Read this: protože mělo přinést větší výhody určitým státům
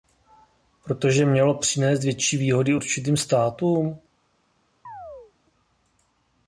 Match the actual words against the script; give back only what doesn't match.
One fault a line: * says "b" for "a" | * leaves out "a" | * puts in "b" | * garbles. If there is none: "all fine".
all fine